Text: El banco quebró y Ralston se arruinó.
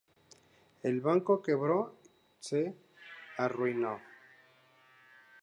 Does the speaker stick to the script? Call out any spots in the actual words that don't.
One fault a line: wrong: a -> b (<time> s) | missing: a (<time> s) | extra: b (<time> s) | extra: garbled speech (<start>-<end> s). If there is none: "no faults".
missing: y Ralston (1.9 s)